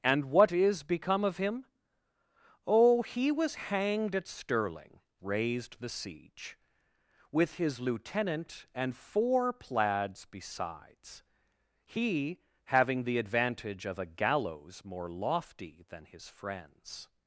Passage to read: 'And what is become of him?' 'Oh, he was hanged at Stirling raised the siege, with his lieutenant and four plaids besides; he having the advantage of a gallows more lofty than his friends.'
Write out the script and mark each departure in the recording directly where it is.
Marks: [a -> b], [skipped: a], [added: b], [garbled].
'And what is become of him?' 'Oh, he was hanged at Stirling raised the siege, with his lieutenant and four plaids besides; he having the advantage of a gallows more lofty than his friends.'